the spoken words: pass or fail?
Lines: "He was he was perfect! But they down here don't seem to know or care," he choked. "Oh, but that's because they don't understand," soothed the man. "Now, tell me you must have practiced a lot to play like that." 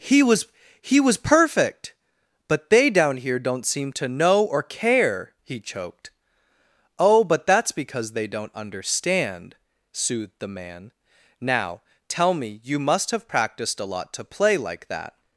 pass